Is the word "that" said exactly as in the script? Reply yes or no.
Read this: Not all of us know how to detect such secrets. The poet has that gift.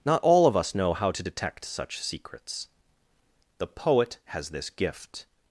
no